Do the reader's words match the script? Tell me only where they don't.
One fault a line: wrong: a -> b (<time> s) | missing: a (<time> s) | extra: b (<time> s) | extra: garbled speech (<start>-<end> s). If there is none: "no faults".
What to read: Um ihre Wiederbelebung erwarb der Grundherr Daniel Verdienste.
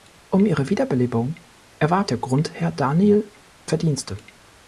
no faults